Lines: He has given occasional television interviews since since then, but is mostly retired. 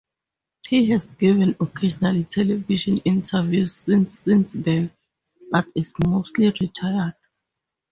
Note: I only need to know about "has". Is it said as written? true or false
true